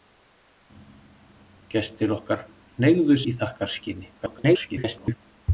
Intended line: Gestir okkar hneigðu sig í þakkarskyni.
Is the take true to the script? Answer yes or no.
no